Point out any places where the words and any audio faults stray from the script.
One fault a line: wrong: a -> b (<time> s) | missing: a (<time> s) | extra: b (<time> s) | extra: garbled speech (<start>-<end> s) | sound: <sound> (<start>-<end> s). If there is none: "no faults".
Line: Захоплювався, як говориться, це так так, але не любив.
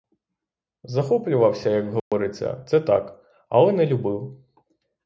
sound: dropout (2.0-2.1 s)
missing: так (3.2 s)